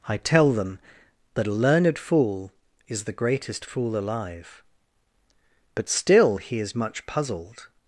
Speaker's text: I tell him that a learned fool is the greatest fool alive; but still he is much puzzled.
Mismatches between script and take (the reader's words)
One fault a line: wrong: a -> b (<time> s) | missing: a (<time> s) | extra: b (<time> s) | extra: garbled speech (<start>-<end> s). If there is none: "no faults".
wrong: him -> them (0.5 s)